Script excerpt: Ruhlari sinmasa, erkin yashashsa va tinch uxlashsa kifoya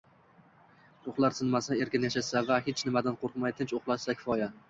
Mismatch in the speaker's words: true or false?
true